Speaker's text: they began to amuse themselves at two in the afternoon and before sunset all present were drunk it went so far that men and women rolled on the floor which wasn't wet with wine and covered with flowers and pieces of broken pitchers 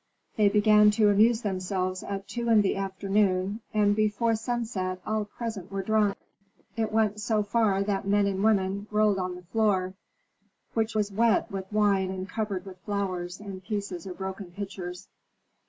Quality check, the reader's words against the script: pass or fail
fail